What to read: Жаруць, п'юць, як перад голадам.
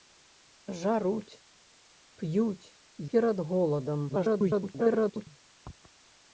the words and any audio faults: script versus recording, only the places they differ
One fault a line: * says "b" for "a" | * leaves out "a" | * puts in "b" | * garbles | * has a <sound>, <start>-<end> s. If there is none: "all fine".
* leaves out "як"
* garbles